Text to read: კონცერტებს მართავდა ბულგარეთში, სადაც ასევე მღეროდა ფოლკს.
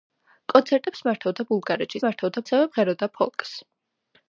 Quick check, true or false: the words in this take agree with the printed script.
false